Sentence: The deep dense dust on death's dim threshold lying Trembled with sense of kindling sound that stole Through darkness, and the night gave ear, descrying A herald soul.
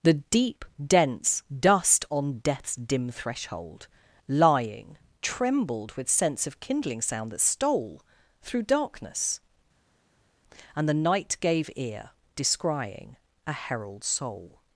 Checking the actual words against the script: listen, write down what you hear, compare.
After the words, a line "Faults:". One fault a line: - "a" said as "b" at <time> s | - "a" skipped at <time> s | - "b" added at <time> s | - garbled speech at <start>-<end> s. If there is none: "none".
The deep dense dust on death's dim threshold lying Trembled with sense of kindling sound that stole Through darkness, and the night gave ear, descrying A herald soul.
Faults:
none